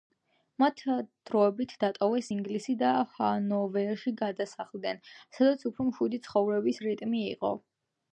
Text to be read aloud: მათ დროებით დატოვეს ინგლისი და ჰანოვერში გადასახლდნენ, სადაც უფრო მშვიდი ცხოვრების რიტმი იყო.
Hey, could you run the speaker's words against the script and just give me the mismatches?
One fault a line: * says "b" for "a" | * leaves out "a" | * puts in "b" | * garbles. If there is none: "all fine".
all fine